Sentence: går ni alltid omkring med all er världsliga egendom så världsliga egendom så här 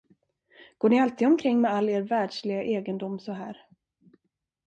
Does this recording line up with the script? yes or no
no